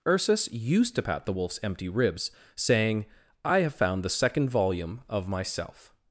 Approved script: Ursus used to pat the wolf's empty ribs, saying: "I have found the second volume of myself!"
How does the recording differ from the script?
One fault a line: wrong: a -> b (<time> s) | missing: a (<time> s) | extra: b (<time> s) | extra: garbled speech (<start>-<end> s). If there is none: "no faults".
no faults